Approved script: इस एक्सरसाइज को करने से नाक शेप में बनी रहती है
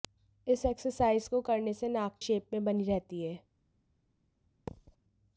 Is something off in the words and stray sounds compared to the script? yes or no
yes